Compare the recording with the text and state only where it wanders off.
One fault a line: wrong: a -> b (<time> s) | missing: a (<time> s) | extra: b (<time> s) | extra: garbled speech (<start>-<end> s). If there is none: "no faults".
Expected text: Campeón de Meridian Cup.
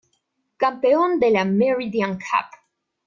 extra: la (1.3 s)